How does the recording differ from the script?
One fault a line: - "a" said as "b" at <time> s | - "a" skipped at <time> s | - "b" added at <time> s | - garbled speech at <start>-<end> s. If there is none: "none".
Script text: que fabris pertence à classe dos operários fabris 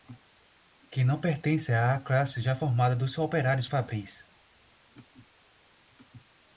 - "fabris" said as "não" at 1.0 s
- "já formada" added at 2.4 s